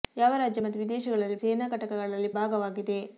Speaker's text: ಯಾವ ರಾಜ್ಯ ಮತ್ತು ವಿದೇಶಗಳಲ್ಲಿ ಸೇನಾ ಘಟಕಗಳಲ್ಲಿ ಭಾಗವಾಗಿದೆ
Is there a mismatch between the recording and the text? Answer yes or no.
no